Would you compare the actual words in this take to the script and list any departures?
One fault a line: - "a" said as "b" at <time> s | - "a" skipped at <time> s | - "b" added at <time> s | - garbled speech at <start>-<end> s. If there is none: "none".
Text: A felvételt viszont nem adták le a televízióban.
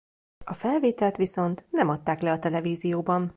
none